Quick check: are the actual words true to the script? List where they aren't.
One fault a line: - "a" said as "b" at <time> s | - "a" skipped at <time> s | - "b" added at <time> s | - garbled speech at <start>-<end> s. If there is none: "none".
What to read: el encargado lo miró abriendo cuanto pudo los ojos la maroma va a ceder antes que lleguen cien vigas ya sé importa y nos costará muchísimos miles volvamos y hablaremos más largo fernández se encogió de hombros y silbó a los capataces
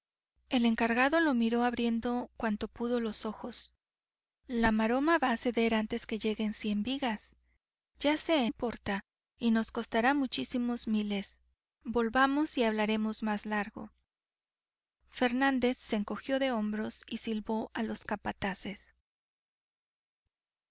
none